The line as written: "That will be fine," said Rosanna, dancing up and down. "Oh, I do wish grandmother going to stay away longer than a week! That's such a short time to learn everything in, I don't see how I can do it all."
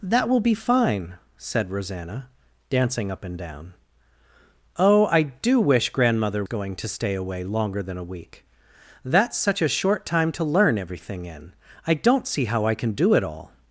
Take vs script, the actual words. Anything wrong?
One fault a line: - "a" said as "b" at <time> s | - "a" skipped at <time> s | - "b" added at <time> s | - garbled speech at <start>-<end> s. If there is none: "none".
none